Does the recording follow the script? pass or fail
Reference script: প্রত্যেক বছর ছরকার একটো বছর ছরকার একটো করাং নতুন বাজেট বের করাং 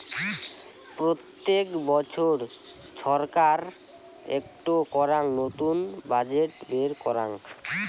fail